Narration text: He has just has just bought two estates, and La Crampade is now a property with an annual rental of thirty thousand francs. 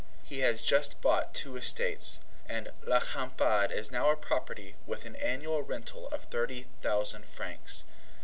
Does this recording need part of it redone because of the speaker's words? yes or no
yes